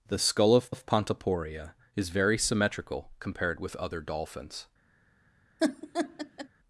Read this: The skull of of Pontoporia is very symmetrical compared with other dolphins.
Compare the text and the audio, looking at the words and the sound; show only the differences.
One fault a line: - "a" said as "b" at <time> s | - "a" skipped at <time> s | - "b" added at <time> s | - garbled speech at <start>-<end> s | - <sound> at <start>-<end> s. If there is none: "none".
- laugh at 5.6-6.5 s